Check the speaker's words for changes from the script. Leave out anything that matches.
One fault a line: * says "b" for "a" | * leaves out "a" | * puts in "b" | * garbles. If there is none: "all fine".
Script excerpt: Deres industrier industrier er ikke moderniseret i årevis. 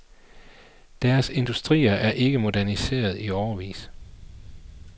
* leaves out "industrier"